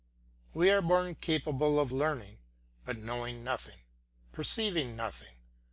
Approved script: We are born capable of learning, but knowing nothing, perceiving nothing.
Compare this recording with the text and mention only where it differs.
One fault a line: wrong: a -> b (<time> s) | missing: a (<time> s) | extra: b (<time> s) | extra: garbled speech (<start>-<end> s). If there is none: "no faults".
no faults